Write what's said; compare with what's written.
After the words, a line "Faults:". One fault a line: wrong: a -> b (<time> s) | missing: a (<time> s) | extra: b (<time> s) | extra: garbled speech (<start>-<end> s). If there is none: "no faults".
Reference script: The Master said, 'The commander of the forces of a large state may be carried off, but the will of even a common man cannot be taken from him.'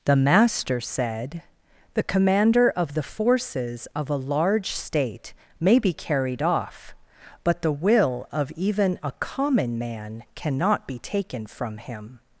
The Master said, 'The commander of the forces of a large state may be carried off, but the will of even a common man cannot be taken from him.'
Faults:
no faults